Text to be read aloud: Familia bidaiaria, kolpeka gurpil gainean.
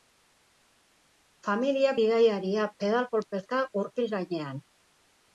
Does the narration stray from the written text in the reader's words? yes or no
yes